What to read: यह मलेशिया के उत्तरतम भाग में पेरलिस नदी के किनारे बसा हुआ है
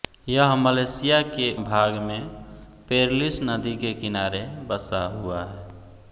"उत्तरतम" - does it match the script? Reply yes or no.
no